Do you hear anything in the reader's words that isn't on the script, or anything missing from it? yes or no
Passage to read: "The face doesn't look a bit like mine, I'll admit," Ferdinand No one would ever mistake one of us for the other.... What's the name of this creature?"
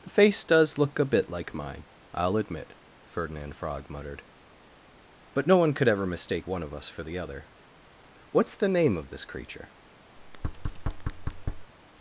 yes